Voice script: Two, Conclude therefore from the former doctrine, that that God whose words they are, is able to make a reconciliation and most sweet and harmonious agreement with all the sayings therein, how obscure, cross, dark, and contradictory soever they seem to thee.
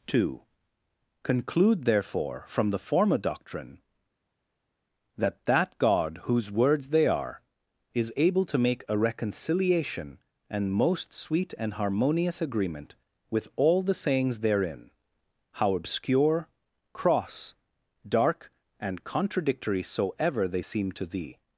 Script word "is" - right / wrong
right